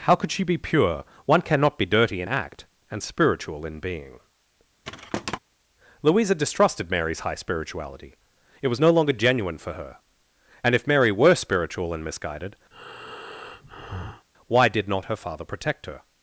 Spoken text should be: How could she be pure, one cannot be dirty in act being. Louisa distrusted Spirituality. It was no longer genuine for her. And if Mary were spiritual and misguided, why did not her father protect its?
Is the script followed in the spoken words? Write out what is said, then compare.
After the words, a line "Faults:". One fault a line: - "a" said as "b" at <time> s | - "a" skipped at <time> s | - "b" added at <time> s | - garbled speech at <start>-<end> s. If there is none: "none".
How could she be pure, one cannot be dirty in act and spiritual in being. Louisa distrusted Mary's high spirituality. It was no longer genuine for her. And if Mary were spiritual and misguided, why did not her father protect her?
Faults:
- "and spiritual in" added at 2.9 s
- "Mary's high" added at 6.9 s
- "its" said as "her" at 15.8 s